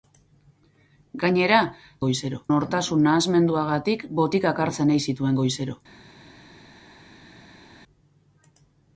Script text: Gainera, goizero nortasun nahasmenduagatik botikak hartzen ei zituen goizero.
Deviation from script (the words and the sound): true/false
false